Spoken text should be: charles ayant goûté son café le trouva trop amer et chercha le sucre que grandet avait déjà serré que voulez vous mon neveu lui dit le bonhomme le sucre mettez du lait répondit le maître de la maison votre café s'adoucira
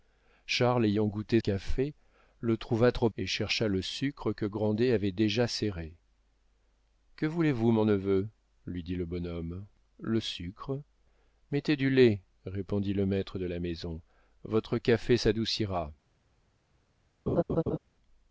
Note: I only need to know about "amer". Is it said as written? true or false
false